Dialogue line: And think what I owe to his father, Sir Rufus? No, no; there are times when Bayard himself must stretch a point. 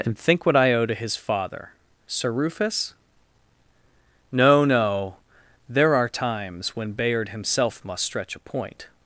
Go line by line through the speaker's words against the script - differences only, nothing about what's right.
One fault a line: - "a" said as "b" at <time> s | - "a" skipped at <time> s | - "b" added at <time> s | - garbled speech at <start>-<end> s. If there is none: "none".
none